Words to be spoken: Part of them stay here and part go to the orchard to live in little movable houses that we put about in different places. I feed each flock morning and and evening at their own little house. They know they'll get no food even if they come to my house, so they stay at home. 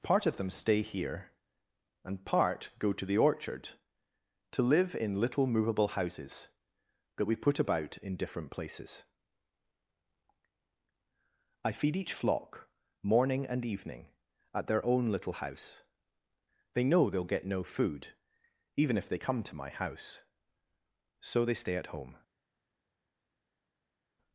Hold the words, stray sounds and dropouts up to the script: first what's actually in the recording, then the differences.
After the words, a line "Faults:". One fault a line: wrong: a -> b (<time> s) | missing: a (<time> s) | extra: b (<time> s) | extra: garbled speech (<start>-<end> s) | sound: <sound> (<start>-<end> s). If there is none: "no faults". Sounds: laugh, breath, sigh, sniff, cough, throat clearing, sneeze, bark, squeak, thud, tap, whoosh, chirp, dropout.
Part of them stay here and part go to the orchard to live in little movable houses that we put about in different places. I feed each flock morning and evening at their own little house. They know they'll get no food even if they come to my house, so they stay at home.
Faults:
missing: and (13.7 s)